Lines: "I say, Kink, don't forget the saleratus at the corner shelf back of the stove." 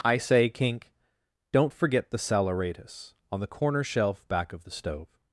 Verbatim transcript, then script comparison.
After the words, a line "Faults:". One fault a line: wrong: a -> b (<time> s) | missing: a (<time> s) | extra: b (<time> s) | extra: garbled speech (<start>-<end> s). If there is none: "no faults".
"I say, Kink, don't forget the saleratus on the corner shelf back of the stove."
Faults:
wrong: at -> on (3.3 s)